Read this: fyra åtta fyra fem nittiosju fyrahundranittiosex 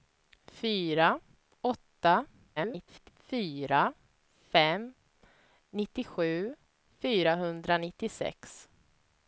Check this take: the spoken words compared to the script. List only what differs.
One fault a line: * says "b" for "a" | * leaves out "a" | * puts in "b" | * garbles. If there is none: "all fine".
* garbles